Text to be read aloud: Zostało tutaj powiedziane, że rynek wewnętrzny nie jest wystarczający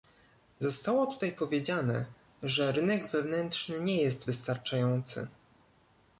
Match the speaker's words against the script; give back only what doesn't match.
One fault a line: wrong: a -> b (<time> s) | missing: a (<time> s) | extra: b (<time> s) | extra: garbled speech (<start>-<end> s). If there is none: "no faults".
no faults